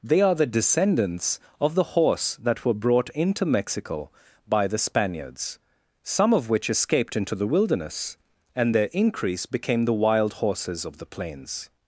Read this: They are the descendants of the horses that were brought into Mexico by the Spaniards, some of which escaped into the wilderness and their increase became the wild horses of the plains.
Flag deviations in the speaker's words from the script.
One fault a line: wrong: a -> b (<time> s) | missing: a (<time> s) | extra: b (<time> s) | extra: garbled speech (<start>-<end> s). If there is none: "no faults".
wrong: horses -> horse (1.9 s)